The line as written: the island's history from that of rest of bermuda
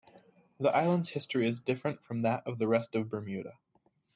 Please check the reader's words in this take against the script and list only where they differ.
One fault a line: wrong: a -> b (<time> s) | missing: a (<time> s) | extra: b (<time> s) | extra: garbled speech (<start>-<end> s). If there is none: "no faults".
extra: is different (1.5 s)
extra: the (2.6 s)